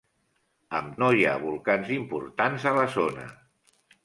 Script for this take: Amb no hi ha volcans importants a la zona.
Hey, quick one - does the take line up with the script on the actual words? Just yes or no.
yes